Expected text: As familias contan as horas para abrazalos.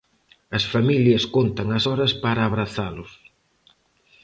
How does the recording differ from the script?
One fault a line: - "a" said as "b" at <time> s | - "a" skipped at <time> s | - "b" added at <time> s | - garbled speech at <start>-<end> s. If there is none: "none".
none